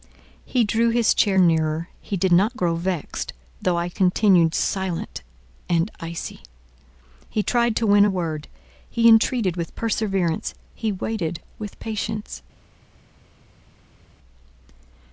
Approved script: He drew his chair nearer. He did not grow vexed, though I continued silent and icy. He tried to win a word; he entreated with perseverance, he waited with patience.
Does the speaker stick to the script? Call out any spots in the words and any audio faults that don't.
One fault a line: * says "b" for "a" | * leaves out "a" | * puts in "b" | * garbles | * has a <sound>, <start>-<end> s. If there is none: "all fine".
all fine